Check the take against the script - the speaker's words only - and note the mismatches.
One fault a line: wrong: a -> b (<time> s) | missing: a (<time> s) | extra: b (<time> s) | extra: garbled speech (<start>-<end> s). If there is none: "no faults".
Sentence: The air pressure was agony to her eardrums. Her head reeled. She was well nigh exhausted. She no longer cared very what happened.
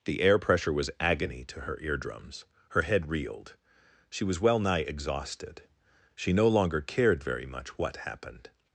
extra: much (7.5 s)